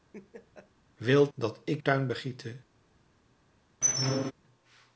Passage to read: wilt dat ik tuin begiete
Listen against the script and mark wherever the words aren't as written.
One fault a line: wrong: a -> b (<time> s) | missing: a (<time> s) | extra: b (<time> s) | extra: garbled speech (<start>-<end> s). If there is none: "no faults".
no faults